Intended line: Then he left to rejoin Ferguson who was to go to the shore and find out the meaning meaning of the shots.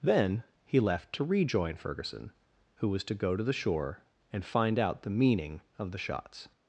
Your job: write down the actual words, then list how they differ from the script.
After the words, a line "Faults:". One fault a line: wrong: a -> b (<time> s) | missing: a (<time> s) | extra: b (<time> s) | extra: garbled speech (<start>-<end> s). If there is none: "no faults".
Then he left to rejoin Ferguson who was to go to the shore and find out the meaning of the shots.
Faults:
missing: meaning (5.6 s)